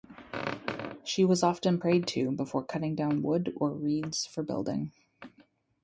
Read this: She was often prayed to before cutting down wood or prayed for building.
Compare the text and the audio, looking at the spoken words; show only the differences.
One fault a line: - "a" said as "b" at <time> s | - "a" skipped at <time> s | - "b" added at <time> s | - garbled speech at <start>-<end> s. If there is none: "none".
- "prayed" said as "reeds" at 3.7 s